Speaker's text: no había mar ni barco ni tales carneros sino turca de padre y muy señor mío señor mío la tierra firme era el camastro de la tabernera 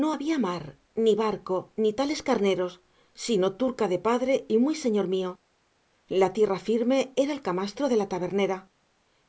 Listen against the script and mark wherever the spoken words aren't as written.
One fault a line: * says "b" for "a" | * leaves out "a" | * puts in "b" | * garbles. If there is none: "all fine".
* leaves out "señor mío"